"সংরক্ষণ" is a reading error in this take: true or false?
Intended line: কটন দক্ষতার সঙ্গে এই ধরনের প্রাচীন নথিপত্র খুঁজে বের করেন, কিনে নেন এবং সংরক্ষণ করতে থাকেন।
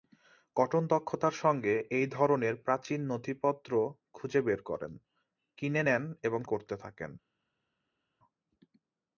true